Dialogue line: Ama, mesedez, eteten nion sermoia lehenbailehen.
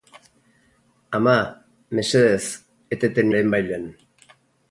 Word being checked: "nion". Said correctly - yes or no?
no